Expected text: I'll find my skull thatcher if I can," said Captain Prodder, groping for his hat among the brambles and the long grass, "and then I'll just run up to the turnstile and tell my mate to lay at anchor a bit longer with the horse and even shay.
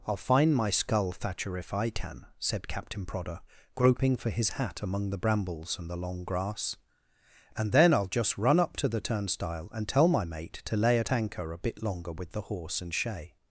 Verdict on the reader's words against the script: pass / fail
fail